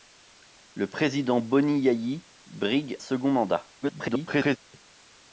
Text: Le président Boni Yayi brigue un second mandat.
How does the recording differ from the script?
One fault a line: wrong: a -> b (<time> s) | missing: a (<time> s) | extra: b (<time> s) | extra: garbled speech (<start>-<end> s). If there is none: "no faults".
missing: un (3.0 s)
extra: garbled speech (3.8-4.6 s)